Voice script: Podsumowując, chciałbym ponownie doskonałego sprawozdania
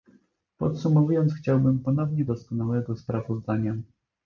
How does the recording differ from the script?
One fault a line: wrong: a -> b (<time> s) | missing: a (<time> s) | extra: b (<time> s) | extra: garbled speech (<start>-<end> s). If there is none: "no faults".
no faults